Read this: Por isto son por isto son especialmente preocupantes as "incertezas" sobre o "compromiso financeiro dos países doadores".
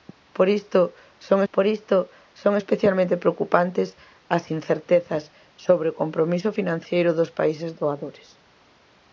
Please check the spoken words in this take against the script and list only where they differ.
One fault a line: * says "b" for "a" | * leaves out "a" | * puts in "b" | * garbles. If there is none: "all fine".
all fine